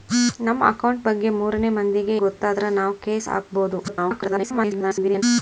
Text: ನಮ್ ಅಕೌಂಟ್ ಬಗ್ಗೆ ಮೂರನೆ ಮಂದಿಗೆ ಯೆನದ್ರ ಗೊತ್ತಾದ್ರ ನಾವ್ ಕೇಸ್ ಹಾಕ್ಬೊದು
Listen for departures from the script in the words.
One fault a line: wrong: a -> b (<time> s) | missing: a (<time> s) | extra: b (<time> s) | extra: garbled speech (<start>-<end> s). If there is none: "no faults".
missing: ಯೆನದ್ರ (2.1 s)
extra: garbled speech (3.9-5.2 s)